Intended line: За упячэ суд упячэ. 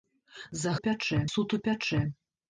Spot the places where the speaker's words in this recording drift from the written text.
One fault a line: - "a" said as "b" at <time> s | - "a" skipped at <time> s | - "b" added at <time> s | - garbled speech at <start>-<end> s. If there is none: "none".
none